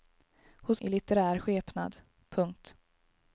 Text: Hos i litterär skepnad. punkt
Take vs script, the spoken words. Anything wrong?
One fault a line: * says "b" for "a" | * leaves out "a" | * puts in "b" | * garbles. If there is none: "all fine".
all fine